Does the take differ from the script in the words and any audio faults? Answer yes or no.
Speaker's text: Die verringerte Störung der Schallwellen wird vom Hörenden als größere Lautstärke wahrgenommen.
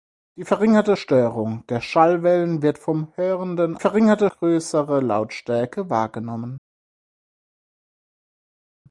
yes